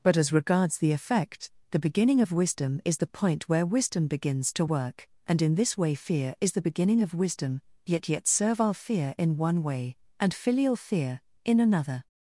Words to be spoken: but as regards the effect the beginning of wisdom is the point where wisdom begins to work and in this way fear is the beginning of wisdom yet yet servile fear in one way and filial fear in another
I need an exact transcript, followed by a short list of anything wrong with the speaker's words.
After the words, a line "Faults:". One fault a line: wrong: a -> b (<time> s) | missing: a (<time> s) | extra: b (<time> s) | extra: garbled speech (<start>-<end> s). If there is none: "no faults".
but as regards the effect the beginning of wisdom is the point where wisdom begins to work and in this way fear is the beginning of wisdom yet yet servile fear in one way and filial fear in another
Faults:
no faults